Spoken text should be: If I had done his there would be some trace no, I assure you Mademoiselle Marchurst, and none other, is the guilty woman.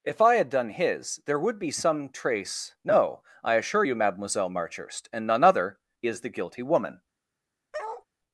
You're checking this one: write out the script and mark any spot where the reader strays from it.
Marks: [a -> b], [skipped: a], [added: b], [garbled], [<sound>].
If I had done his there would be some trace no, I assure you Mademoiselle Marchurst, and none other, is the guilty woman. [bark]